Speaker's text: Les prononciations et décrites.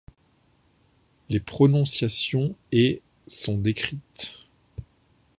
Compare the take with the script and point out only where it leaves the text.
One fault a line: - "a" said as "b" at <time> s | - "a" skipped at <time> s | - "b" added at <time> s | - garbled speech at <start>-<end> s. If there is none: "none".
- "sont" added at 3.3 s